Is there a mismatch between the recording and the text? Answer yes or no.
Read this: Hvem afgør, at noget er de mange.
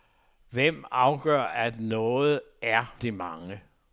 no